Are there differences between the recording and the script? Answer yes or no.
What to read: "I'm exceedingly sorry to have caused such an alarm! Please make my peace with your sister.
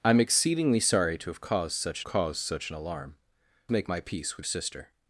yes